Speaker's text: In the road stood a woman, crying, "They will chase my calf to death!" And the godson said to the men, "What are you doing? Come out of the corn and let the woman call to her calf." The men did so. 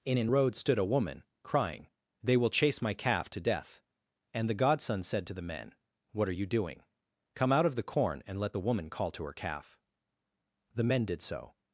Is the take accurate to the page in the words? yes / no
no